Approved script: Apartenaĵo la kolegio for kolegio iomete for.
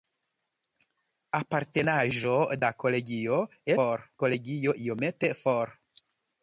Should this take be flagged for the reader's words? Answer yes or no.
no